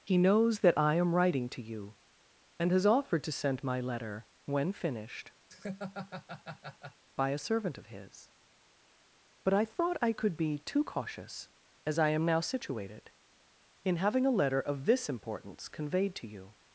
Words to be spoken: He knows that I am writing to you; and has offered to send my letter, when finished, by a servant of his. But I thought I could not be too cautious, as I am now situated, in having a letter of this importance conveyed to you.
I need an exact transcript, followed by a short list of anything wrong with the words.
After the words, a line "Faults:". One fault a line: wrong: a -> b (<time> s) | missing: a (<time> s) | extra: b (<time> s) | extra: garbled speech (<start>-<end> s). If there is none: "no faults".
He knows that I am writing to you; and has offered to send my letter, when finished, by a servant of his. But I thought I could be too cautious, as I am now situated, in having a letter of this importance conveyed to you.
Faults:
missing: not (10.4 s)